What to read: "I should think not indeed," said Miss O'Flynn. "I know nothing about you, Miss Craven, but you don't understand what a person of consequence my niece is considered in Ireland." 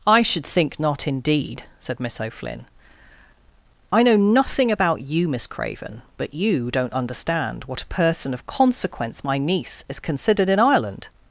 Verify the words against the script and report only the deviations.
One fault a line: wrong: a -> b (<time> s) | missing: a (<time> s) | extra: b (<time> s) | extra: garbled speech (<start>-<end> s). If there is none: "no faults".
no faults